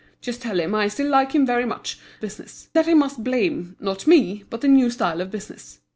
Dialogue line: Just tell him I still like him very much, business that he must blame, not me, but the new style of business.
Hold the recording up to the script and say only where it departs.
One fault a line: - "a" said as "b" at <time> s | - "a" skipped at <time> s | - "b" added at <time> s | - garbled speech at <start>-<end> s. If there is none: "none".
none